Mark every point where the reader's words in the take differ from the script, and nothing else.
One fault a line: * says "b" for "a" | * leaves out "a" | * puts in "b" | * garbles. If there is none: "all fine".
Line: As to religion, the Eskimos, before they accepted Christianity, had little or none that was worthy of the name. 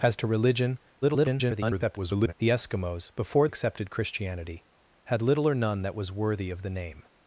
* garbles
* leaves out "they"